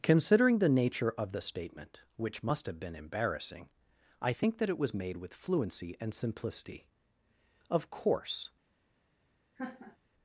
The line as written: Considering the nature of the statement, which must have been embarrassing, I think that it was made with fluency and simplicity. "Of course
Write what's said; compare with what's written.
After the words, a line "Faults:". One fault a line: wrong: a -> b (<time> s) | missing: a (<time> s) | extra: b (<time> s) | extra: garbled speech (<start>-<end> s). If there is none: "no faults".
Considering the nature of the statement, which must have been embarrassing, I think that it was made with fluency and simplicity. "Of course
Faults:
no faults